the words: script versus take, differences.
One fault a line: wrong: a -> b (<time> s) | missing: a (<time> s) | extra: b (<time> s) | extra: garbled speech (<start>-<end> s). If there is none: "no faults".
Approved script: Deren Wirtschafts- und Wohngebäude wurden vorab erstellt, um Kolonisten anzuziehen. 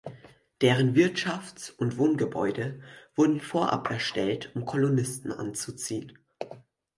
no faults